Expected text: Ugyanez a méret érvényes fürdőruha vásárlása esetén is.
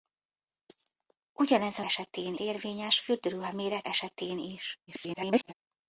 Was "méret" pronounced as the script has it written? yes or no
no